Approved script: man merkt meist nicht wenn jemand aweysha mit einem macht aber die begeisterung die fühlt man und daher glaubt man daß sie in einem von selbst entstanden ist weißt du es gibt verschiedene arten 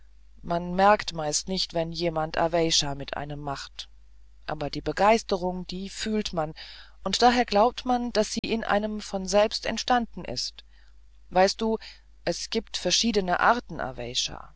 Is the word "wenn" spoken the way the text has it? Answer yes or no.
yes